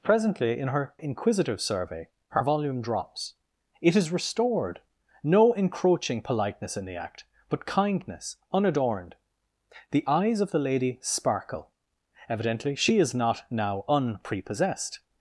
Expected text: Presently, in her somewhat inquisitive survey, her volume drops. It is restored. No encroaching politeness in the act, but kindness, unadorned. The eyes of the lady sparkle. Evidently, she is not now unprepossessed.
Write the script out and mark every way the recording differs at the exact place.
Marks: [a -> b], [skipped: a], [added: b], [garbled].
Presently, in her [skipped: somewhat] inquisitive survey, her volume drops. It is restored. No encroaching politeness in the act, but kindness, unadorned. The eyes of the lady sparkle. Evidently, she is not now unprepossessed.